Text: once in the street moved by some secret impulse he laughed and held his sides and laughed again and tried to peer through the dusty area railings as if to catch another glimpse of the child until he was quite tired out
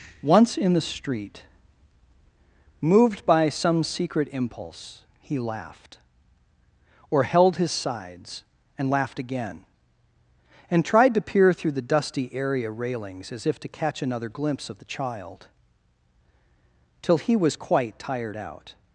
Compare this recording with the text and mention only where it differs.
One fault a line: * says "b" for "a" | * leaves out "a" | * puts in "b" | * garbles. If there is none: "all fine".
* says "or" for "and"
* says "till" for "until"